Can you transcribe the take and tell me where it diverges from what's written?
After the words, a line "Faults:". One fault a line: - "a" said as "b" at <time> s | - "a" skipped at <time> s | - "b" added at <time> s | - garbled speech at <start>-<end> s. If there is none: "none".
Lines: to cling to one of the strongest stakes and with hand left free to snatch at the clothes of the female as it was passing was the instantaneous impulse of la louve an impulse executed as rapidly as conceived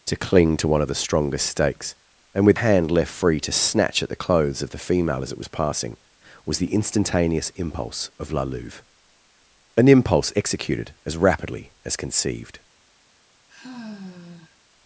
to cling to one of the strongest stakes and with hand left free to snatch at the clothes of the female as it was passing was the instantaneous impulse of la louve an impulse executed as rapidly as conceived
Faults:
none